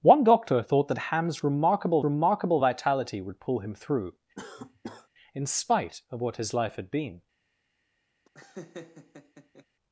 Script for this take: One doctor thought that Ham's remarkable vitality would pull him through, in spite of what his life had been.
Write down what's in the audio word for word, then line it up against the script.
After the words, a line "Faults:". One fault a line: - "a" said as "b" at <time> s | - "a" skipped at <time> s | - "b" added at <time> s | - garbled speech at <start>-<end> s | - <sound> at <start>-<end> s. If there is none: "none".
One doctor thought that Ham's remarkable remarkable vitality would pull him through, in spite of what his life had been.
Faults:
- "remarkable" added at 2.0 s
- cough at 4.4-5.1 s
- laugh at 8.3-9.7 s